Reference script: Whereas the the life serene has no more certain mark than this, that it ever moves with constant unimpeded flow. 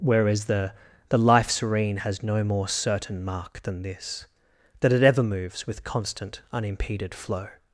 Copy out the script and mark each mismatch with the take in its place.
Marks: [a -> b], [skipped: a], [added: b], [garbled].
Whereas the the life serene has no more certain mark than this, that it ever moves with constant unimpeded flow.